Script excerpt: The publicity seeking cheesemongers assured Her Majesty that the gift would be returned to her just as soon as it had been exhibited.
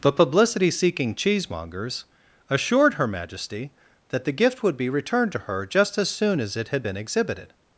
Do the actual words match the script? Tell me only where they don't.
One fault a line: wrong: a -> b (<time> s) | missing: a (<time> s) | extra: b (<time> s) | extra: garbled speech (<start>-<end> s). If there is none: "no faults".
no faults